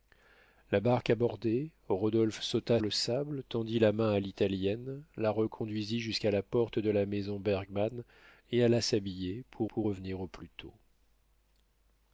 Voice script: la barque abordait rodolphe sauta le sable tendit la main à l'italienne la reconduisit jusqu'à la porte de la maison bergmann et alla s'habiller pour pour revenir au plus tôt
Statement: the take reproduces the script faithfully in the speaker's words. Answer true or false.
true